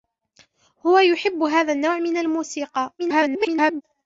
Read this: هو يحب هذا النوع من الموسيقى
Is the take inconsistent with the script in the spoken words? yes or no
yes